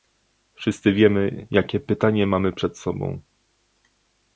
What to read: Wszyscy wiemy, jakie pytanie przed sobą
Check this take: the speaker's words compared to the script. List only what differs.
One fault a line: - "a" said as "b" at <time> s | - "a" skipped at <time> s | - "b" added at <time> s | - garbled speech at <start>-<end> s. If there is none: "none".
- "mamy" added at 2.3 s